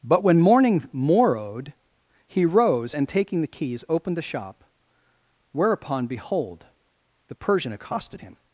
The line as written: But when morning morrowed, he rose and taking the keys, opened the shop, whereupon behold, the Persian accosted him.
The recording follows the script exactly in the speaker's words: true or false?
true